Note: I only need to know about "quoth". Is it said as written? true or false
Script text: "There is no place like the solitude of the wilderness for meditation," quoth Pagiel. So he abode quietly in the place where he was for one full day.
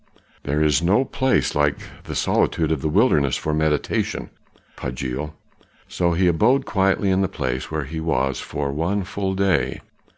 false